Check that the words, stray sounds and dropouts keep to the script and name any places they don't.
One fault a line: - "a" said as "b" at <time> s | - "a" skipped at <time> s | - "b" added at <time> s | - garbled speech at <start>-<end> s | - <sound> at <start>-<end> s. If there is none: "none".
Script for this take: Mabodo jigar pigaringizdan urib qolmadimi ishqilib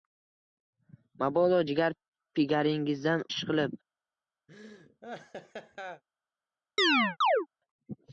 - "urib qolmadimi" skipped at 3.2 s
- laugh at 4.5-6.0 s
- chirp at 6.8-7.5 s